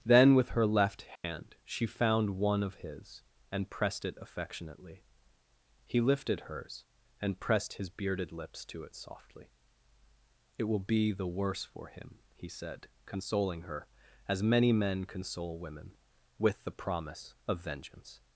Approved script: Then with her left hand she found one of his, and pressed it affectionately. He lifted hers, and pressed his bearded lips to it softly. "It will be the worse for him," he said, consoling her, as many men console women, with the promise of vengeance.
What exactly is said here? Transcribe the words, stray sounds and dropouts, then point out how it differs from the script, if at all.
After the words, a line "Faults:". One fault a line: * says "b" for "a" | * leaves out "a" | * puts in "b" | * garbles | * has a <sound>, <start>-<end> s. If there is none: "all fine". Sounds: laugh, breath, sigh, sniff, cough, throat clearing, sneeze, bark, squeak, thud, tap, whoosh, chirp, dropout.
Then with her left hand she found one of his, and pressed it affectionately. He lifted hers, and pressed his bearded lips to it softly. "It will be the worse for him," he said, consoling her, as many men console women, with the promise of vengeance.
Faults:
* has a dropout, 1.2-1.2 s